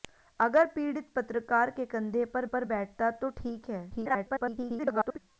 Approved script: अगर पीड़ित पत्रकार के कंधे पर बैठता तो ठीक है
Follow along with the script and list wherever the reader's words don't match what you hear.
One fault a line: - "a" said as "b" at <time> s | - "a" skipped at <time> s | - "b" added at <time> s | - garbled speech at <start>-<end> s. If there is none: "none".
- "पर" added at 2.4 s
- garbled speech at 3.9-5.2 s